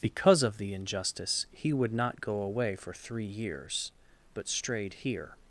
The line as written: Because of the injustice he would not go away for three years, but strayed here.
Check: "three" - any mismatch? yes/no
no